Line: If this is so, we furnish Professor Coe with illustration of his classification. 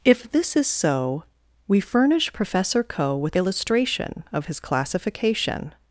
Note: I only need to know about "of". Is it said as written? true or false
true